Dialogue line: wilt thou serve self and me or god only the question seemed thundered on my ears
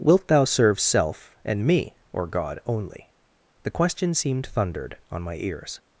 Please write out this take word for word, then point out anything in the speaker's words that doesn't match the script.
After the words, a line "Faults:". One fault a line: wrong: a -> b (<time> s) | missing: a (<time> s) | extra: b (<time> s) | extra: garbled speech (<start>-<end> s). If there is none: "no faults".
wilt thou serve self and me or god only the question seemed thundered on my ears
Faults:
no faults